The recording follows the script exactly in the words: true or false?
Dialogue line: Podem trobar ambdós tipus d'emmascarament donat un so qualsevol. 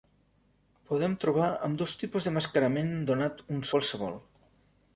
false